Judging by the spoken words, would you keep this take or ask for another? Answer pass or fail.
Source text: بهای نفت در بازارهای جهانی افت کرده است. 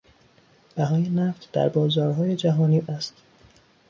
fail